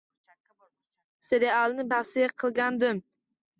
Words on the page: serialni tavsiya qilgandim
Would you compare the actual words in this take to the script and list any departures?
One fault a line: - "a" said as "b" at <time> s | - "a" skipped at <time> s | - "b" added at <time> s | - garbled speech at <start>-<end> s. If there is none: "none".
none